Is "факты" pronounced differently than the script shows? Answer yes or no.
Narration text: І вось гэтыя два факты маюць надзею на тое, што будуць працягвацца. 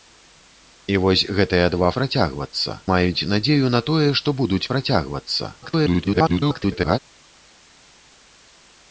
yes